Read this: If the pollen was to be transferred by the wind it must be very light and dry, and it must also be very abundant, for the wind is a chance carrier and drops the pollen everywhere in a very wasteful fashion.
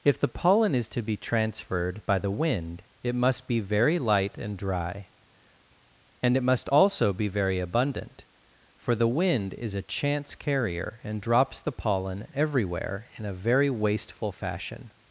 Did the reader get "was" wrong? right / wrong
wrong